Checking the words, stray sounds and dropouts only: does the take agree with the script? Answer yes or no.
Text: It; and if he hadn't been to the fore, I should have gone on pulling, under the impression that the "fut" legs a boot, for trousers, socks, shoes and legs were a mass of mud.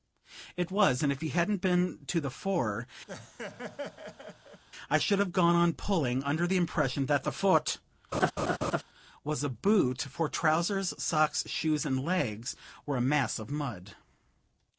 no